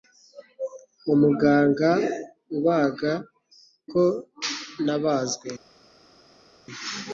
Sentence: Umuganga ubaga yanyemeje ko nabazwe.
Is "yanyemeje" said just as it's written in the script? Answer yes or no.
no